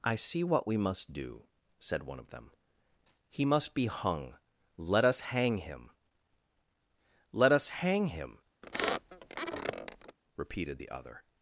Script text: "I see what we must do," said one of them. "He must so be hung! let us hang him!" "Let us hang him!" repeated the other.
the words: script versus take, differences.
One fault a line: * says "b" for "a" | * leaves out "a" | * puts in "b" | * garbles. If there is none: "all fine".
* leaves out "so"